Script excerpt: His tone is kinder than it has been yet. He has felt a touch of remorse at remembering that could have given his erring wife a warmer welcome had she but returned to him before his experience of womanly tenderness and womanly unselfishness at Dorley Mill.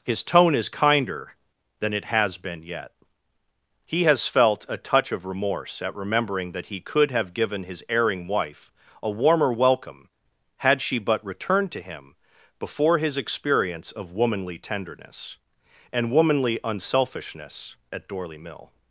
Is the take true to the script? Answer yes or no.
no